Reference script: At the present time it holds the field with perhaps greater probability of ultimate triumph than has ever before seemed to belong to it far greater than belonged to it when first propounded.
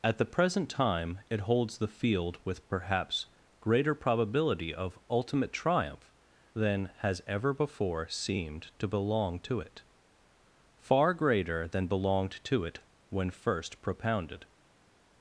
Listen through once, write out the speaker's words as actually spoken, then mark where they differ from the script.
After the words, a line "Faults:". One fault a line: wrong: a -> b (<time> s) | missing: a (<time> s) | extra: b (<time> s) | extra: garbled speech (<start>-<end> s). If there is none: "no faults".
At the present time it holds the field with perhaps greater probability of ultimate triumph than has ever before seemed to belong to it far greater than belonged to it when first propounded.
Faults:
no faults